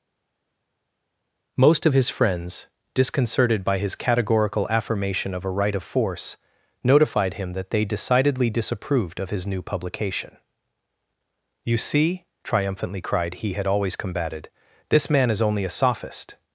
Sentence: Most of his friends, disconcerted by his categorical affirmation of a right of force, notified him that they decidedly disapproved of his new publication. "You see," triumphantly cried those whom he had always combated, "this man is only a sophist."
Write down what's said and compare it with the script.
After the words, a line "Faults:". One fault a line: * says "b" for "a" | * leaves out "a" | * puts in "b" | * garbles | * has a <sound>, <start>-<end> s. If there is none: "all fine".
Most of his friends, disconcerted by his categorical affirmation of a right of force, notified him that they decidedly disapproved of his new publication. "You see," triumphantly cried he had always combated, "this man is only a sophist."
Faults:
* leaves out "those whom"